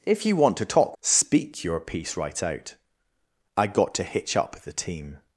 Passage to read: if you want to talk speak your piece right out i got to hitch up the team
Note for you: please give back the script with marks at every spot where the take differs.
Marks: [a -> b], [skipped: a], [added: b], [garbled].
if you want to talk speak your piece right out i got to hitch up the team